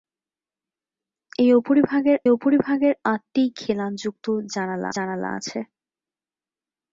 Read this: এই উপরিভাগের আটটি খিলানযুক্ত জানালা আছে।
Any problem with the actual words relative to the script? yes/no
yes